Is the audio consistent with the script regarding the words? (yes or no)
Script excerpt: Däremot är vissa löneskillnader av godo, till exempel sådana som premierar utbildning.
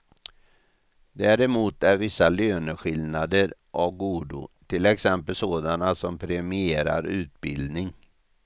yes